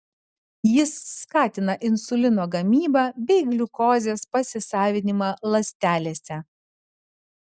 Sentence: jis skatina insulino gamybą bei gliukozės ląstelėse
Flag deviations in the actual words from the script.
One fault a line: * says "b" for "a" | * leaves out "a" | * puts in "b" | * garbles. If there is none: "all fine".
* puts in "pasisavinimą"